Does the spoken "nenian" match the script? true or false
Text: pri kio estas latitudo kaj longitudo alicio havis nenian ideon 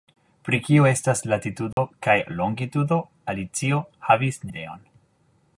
false